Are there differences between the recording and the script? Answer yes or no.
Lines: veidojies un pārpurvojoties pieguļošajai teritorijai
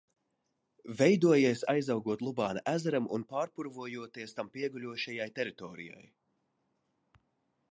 yes